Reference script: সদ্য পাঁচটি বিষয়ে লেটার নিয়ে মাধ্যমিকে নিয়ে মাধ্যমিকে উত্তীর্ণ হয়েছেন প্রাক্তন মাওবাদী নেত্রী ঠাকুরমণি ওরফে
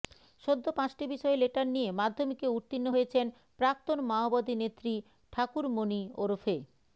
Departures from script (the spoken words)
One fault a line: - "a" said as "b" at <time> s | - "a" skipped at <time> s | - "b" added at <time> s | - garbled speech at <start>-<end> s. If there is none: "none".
- "নিয়ে মাধ্যমিকে" skipped at 2.5 s